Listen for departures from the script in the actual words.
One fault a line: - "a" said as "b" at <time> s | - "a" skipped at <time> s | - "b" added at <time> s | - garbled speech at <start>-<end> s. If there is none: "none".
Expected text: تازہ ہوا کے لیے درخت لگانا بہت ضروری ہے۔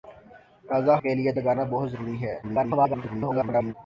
- "ہوا" skipped at 0.9 s
- "درخت" skipped at 1.3 s
- garbled speech at 2.4-3.7 s